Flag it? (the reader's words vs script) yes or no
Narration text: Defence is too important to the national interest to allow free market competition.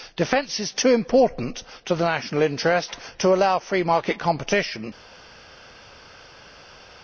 no